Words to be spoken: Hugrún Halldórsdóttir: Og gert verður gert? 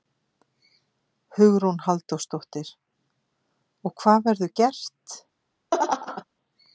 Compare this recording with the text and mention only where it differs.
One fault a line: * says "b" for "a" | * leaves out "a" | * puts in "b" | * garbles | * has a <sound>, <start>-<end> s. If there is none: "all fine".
* says "hvað" for "gert"
* has a laugh, 5.7-6.2 s